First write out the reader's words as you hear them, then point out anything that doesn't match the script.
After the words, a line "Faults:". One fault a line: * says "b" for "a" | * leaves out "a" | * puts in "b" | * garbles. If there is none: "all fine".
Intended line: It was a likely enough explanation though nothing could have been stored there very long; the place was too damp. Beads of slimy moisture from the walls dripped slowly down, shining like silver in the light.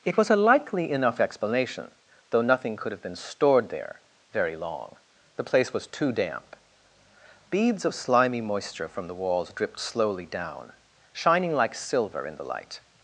It was a likely enough explanation though nothing could have been stored there very long; the place was too damp. Beads of slimy moisture from the walls dripped slowly down, shining like silver in the light.
Faults:
all fine